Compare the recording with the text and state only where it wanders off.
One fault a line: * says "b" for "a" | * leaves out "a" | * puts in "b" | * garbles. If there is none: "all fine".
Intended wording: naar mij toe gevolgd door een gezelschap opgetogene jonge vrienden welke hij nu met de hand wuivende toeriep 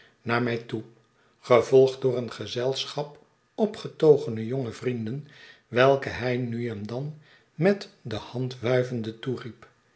* puts in "en dan"